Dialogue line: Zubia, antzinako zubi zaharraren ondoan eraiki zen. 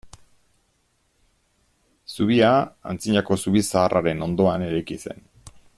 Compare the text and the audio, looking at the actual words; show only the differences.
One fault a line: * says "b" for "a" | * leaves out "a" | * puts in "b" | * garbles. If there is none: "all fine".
all fine